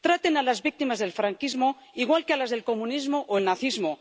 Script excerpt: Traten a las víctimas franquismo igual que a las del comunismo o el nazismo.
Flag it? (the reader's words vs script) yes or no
yes